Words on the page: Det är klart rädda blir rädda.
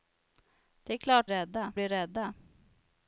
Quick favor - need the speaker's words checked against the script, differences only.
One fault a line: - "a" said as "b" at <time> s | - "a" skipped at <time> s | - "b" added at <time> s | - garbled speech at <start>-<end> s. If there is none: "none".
none